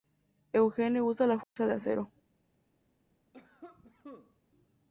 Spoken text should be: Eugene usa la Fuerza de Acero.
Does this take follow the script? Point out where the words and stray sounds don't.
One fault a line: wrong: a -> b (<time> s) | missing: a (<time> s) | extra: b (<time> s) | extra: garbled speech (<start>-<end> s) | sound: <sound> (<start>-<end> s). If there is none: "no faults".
sound: dropout (1.4-1.6 s)
sound: cough (3.3-4.4 s)